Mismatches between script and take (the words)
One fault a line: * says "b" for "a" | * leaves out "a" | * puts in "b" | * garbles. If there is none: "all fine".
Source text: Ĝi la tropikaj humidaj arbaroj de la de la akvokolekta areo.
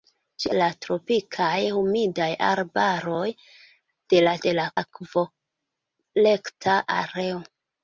all fine